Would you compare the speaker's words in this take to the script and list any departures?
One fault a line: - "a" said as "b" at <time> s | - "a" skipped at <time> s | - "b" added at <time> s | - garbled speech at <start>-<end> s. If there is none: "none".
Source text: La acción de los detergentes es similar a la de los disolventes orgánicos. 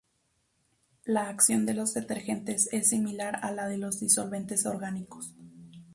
none